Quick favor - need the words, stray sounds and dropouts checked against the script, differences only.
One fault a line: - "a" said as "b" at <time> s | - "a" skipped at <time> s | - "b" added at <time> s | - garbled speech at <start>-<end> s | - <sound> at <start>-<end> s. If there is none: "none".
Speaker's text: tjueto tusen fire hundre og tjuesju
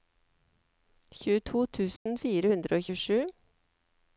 - dropout at 2.0-2.1 s